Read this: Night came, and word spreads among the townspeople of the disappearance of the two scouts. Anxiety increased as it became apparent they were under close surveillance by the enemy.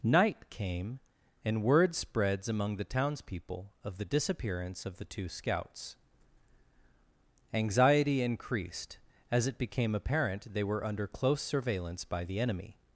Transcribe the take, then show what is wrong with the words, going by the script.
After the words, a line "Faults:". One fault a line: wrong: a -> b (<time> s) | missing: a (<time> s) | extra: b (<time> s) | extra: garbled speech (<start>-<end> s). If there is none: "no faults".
Night came, and word spreads among the townspeople of the disappearance of the two scouts. Anxiety increased as it became apparent they were under close surveillance by the enemy.
Faults:
no faults